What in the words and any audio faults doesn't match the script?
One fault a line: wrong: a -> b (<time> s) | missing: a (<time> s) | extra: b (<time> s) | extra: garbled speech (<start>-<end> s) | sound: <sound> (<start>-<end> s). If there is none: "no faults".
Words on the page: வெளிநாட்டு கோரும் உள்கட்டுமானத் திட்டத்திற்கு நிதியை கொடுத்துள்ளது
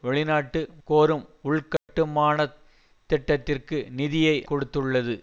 sound: dropout (1.8-1.9 s)